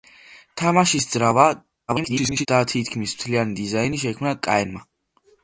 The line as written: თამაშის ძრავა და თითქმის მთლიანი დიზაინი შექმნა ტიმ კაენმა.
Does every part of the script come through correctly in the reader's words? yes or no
no